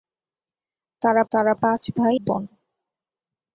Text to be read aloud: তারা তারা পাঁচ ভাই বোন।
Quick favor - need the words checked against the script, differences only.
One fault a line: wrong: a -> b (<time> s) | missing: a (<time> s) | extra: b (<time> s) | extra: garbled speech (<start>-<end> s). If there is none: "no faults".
no faults